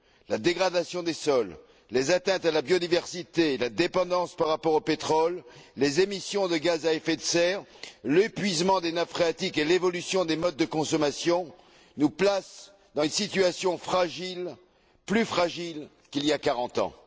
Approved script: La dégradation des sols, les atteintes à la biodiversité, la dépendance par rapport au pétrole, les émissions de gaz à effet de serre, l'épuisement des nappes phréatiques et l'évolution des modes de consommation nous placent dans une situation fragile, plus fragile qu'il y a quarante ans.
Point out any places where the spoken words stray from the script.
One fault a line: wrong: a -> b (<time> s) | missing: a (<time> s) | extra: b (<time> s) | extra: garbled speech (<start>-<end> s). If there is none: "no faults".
no faults